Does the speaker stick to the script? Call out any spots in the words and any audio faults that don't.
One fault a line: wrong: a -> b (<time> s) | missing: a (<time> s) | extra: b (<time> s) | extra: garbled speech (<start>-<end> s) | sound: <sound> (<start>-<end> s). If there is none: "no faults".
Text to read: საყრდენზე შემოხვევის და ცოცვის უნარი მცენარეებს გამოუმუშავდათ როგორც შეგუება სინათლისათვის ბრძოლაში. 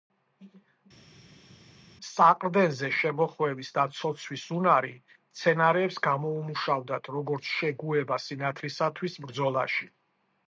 no faults